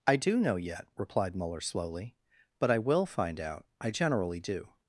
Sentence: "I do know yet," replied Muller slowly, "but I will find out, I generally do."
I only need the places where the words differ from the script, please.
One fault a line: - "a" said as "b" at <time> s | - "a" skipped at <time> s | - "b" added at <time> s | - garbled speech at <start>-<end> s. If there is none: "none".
none